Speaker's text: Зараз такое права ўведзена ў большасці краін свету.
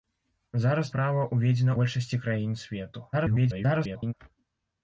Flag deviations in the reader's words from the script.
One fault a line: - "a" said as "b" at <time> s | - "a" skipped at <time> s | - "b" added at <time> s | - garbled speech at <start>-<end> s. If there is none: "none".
- "такое" skipped at 0.9 s
- "ў" skipped at 1.7 s
- garbled speech at 3.1-4.1 s